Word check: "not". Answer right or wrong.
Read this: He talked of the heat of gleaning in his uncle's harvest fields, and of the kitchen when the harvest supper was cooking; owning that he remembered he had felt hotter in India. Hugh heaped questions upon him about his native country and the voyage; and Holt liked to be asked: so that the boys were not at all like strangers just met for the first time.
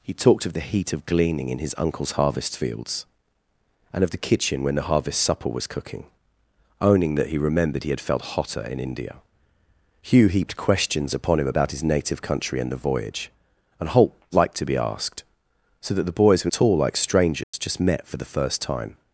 wrong